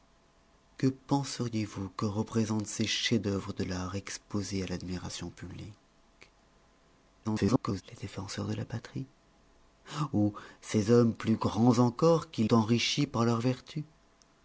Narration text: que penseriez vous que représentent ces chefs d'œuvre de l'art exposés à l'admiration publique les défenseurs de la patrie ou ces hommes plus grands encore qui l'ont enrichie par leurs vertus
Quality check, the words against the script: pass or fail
fail